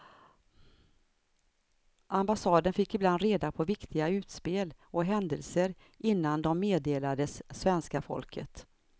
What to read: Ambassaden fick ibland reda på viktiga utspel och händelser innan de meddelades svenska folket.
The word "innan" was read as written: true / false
true